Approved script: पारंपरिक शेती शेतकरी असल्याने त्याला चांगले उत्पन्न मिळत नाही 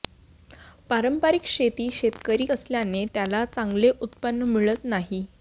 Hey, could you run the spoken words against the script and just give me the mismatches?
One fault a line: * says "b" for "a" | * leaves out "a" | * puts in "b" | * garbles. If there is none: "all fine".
all fine